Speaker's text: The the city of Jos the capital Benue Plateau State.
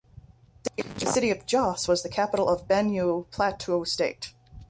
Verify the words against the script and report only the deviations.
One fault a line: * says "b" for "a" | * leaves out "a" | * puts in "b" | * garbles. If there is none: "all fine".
* leaves out "the"
* puts in "was"
* puts in "of"